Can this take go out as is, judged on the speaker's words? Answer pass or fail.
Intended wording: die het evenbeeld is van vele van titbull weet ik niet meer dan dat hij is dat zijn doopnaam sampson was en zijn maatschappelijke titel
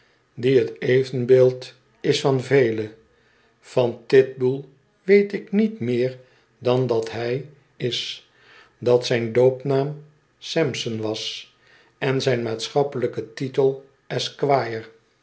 pass